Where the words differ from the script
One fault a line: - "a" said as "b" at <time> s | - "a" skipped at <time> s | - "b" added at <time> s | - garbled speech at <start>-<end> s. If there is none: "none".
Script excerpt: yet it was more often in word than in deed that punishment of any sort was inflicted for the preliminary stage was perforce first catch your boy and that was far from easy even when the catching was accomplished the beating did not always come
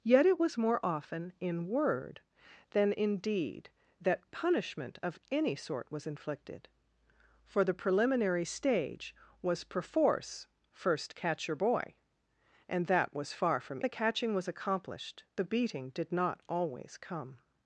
- "easy even when" skipped at 13.8 s